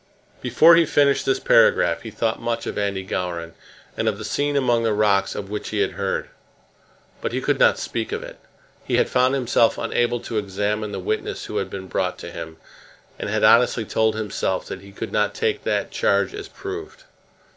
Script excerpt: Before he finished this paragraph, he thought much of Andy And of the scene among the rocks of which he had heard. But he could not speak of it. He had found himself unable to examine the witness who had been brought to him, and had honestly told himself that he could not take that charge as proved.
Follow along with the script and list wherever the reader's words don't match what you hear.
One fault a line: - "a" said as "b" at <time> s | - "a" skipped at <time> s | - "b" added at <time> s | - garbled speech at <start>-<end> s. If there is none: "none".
- "Gowran" added at 3.0 s